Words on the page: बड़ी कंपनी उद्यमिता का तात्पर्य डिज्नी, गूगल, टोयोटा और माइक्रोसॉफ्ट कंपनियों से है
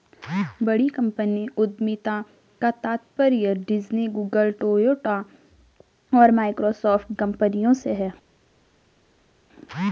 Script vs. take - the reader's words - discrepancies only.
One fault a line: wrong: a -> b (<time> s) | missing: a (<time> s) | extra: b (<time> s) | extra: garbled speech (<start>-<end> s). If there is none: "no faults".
no faults